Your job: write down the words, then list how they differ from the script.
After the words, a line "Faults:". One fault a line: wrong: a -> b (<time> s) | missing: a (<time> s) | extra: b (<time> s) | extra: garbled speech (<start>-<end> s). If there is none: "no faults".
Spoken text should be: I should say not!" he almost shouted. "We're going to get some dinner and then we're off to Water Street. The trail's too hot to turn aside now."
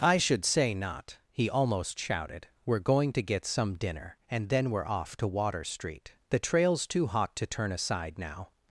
I should say not!" he almost shouted. "We're going to get some dinner and then we're off to Water Street. The trail's too hot to turn aside now."
Faults:
no faults